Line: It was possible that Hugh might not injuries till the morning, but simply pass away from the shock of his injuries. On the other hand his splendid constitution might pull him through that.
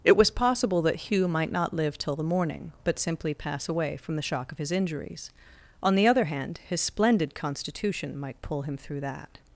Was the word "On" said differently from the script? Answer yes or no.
no